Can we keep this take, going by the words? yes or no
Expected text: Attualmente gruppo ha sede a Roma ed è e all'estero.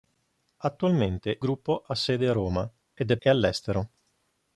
yes